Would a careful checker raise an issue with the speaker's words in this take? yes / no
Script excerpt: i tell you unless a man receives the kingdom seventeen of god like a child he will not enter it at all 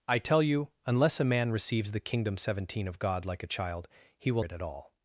yes